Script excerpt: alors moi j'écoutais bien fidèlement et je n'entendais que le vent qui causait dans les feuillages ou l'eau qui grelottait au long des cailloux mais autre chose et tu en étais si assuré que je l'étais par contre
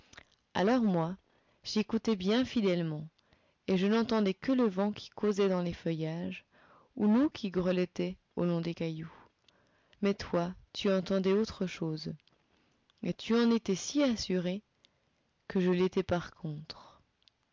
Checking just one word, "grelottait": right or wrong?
right